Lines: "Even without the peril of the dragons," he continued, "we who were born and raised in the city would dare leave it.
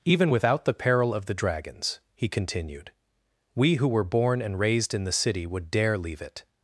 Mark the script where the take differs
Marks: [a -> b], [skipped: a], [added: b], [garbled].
"Even without the peril of the dragons," he continued, "we who were born and raised in the city would dare leave it.